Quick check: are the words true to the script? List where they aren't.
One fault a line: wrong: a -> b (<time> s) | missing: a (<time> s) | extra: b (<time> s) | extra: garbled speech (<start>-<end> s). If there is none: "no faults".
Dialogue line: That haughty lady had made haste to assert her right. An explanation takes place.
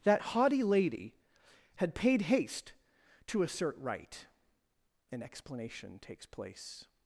wrong: made -> paid (1.9 s)
missing: her (3.8 s)